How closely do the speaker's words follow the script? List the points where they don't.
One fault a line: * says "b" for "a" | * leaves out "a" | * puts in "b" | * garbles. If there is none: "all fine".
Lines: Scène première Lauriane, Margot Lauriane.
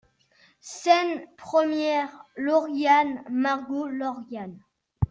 all fine